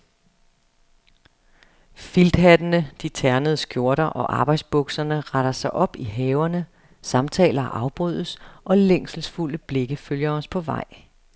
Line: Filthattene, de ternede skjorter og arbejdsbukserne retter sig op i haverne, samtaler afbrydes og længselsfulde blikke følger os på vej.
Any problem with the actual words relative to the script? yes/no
no